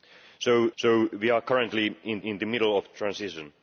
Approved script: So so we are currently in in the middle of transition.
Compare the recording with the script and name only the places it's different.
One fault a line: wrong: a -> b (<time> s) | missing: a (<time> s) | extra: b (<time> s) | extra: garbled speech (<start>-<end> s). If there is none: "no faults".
no faults